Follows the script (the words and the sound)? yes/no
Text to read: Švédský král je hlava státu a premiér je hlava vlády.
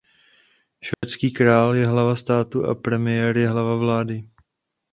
no